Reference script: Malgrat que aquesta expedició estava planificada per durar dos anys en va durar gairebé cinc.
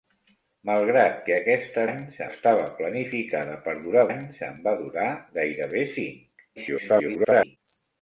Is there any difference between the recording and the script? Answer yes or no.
yes